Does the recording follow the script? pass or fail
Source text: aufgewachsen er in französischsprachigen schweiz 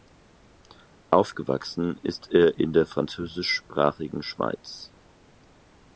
fail